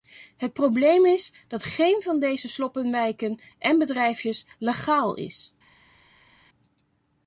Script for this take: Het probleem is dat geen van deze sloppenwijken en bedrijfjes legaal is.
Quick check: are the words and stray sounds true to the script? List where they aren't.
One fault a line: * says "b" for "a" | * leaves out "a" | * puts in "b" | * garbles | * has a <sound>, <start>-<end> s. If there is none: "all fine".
all fine